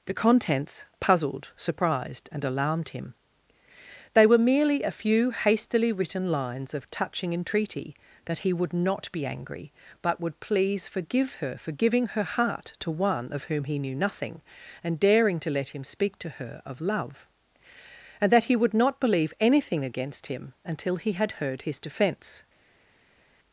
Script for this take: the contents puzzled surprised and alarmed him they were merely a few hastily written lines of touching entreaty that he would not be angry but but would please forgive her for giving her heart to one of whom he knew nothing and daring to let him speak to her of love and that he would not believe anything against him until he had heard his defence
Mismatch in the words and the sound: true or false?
true